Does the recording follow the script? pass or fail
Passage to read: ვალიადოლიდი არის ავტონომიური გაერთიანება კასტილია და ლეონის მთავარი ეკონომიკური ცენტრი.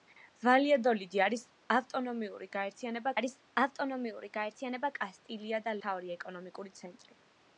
fail